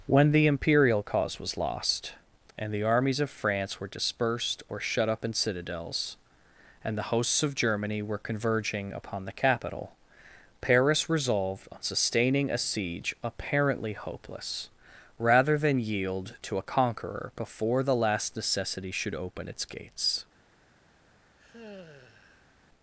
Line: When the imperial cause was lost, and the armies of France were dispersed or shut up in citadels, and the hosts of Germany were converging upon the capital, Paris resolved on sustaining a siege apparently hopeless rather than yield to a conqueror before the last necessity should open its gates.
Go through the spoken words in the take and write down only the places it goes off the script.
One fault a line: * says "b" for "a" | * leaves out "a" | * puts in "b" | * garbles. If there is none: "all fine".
all fine